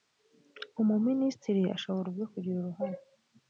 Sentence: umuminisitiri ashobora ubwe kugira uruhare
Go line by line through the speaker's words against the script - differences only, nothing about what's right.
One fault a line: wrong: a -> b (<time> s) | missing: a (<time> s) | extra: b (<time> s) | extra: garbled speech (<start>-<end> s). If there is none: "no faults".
no faults